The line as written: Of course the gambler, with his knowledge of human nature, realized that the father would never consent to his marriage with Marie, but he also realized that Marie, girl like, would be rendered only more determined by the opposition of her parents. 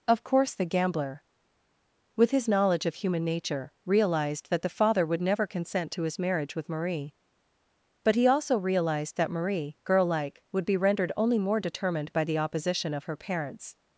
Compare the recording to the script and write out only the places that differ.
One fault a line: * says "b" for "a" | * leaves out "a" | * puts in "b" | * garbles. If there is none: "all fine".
all fine